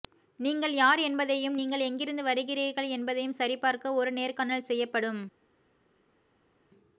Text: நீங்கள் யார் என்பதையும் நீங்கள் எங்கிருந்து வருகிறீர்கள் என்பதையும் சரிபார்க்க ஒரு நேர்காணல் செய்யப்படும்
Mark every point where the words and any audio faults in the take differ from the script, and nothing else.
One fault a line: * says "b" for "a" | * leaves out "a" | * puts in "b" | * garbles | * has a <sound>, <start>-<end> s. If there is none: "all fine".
all fine